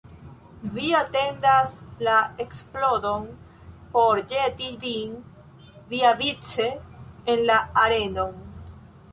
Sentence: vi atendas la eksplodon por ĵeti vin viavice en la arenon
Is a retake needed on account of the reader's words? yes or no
no